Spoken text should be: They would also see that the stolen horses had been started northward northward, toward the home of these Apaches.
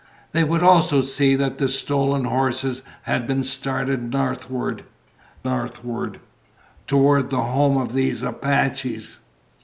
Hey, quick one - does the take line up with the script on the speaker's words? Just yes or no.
yes